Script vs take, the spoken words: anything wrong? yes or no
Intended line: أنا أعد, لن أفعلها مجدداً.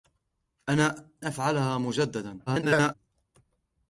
yes